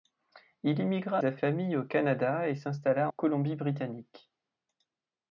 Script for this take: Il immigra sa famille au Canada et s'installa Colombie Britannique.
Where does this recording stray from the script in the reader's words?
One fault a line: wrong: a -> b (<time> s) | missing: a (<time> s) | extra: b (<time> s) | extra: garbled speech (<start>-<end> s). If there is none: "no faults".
no faults